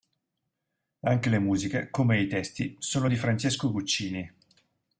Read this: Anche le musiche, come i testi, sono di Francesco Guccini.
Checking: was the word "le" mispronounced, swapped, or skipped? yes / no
no